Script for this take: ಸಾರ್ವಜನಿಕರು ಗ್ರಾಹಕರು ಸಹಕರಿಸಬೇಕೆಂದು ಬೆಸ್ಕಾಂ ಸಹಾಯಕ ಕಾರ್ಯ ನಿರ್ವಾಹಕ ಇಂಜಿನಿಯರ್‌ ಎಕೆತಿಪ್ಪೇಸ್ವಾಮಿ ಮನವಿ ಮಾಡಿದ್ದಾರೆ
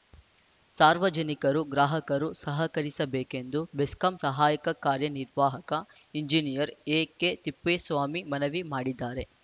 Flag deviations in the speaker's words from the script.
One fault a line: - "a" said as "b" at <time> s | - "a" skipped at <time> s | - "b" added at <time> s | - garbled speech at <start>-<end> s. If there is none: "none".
none